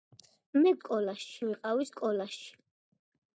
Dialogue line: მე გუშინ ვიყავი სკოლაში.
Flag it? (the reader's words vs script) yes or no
yes